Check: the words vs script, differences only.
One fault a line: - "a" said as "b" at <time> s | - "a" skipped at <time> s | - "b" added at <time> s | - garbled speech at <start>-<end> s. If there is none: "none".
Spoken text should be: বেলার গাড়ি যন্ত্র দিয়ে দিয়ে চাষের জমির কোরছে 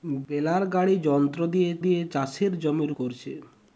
none